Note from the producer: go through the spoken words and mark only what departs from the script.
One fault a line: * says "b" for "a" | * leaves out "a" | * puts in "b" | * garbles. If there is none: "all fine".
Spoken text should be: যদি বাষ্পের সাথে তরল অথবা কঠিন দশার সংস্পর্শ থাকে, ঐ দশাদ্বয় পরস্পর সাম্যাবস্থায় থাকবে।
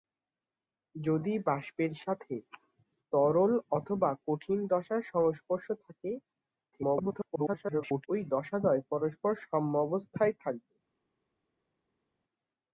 * garbles